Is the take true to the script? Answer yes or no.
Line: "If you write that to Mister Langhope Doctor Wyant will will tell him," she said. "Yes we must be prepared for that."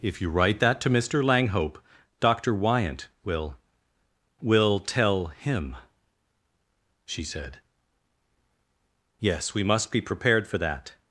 yes